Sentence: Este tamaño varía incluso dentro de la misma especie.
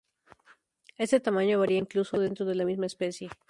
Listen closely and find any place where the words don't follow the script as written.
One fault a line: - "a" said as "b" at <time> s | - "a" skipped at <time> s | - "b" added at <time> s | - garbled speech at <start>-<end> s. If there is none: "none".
none